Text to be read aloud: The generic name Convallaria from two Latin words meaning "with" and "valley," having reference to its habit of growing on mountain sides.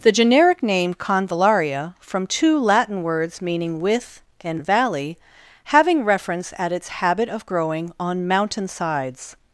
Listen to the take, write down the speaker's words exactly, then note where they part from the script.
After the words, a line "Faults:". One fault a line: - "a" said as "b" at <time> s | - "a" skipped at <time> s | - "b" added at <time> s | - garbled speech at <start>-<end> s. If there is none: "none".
The generic name Convallaria from two Latin words meaning "with" and "valley," having reference at its habit of growing on mountain sides.
Faults:
- "to" said as "at" at 6.6 s